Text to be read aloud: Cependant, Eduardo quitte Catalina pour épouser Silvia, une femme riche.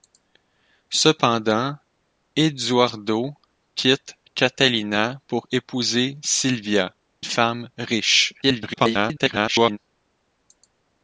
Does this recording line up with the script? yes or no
no